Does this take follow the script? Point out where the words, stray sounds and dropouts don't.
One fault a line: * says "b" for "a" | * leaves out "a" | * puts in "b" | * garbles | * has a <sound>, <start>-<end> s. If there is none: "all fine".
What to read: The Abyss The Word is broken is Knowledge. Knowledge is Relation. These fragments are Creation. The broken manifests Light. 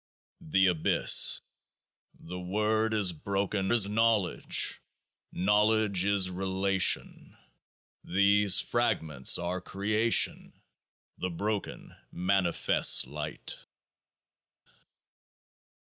all fine